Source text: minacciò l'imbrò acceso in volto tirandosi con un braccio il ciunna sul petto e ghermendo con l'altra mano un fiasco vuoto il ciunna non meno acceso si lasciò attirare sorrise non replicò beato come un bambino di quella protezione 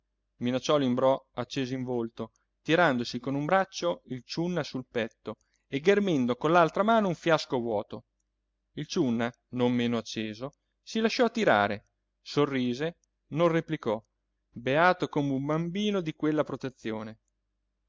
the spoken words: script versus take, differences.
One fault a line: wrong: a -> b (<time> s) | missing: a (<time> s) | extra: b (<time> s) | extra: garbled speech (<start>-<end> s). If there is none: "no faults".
no faults